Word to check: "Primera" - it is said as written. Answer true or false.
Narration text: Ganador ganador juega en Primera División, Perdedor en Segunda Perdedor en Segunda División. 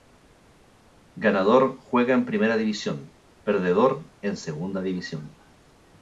true